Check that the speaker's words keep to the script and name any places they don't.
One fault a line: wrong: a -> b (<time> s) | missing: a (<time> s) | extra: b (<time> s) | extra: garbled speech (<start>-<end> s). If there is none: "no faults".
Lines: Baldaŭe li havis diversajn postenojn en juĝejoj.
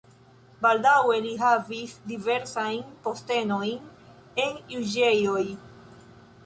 no faults